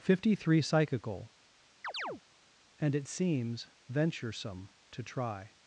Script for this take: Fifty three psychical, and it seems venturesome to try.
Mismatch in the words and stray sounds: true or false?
true